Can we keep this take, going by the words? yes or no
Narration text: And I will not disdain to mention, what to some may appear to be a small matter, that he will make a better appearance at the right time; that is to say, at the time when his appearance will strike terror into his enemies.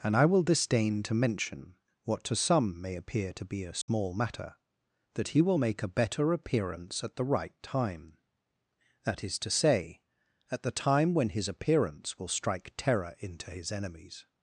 no